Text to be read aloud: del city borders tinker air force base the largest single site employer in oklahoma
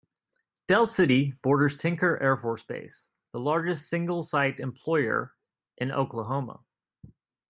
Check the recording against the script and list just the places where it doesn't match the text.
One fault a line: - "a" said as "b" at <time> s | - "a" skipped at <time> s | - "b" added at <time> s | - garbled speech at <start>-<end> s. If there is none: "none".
none